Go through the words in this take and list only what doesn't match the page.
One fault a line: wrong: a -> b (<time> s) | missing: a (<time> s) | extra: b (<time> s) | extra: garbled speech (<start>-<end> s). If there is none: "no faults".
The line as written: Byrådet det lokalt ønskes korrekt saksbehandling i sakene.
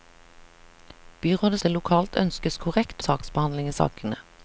no faults